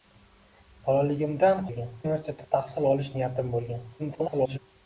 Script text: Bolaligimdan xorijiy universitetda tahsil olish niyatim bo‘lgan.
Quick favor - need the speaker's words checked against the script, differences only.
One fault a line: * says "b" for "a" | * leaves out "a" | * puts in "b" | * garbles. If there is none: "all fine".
* says "bo‘lgan" for "xorijiy"
* garbles